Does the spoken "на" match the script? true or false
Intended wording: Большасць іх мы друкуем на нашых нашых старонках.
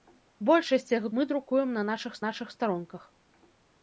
true